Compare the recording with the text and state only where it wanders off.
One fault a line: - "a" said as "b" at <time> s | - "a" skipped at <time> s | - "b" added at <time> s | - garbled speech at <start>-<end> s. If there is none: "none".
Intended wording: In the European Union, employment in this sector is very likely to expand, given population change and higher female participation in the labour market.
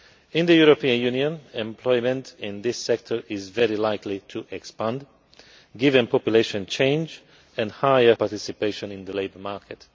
- "female" skipped at 8.2 s